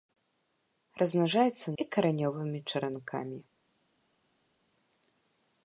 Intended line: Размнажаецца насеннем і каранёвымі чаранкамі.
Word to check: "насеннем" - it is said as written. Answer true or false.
false